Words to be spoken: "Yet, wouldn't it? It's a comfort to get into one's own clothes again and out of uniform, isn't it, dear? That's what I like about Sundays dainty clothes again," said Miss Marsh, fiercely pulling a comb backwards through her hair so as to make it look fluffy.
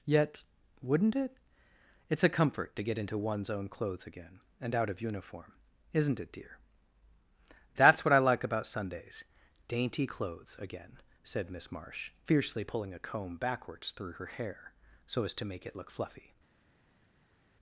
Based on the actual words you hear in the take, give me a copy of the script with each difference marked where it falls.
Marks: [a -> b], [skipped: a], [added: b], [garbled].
"Yet, wouldn't it? It's a comfort to get into one's own clothes again and out of uniform, isn't it, dear? That's what I like about Sundays dainty clothes again," said Miss Marsh, fiercely pulling a comb backwards through her hair so as to make it look fluffy.